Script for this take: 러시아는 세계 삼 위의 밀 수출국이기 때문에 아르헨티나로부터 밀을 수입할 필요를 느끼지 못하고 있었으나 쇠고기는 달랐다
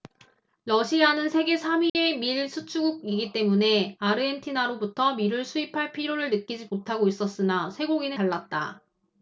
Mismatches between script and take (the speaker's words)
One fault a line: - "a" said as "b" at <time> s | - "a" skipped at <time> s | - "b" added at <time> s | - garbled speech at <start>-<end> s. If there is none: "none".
none